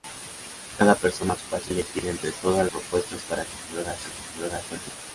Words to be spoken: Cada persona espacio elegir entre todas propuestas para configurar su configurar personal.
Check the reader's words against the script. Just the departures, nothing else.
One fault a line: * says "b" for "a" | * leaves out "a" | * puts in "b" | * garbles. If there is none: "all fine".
all fine